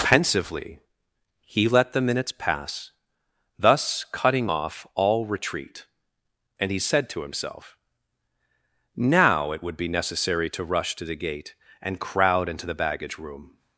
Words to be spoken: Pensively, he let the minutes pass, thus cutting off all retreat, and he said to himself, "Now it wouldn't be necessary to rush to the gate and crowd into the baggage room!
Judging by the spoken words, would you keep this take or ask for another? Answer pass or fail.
fail